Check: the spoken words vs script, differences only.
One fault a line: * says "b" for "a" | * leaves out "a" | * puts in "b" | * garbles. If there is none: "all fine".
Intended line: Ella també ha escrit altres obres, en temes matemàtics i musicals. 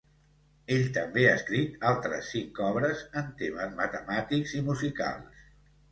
* says "Ell" for "Ella"
* puts in "cinc"